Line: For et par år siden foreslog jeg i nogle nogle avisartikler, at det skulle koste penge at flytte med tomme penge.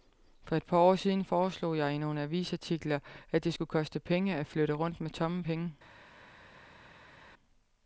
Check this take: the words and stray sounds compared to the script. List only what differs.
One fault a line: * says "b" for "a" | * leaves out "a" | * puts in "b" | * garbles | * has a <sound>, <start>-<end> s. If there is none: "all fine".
* leaves out "nogle"
* puts in "rundt"